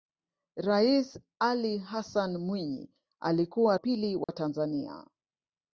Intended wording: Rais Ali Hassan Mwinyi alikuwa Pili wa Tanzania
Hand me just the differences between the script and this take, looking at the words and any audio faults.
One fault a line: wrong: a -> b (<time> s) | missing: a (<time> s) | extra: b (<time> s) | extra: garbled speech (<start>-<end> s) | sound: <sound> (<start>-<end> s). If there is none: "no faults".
sound: dropout (4.2-4.3 s)